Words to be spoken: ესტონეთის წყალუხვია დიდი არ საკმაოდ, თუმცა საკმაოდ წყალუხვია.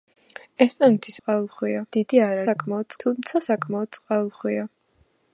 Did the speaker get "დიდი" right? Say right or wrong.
right